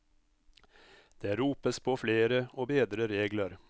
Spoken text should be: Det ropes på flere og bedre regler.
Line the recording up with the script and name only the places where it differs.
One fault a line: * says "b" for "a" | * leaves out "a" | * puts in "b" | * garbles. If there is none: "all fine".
all fine